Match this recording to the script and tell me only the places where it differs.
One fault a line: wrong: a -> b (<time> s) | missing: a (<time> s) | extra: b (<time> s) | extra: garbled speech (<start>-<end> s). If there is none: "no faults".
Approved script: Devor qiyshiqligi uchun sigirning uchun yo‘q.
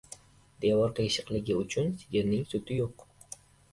wrong: uchun -> suti (2.5 s)